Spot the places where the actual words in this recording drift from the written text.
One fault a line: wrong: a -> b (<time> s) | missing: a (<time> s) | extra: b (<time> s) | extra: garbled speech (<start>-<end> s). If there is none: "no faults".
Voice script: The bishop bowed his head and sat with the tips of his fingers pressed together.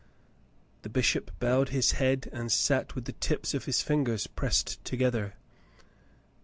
no faults